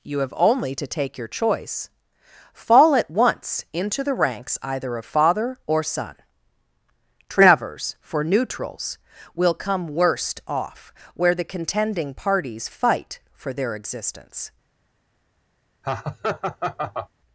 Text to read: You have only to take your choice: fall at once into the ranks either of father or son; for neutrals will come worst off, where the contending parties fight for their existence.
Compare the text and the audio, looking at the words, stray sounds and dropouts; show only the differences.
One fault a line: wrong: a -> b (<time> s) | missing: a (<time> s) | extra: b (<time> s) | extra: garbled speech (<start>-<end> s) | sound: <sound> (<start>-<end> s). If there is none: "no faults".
extra: travers (7.3 s)
sound: laugh (15.8-17.1 s)